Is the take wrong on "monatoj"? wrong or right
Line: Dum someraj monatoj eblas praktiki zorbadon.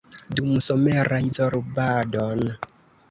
wrong